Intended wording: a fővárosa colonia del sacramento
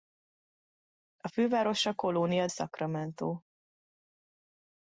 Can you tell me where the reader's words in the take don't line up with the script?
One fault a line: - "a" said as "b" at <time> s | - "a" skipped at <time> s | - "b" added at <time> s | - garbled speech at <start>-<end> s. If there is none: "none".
- "del" skipped at 2.5 s